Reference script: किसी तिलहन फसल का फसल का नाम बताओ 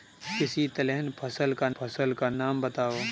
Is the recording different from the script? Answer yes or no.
no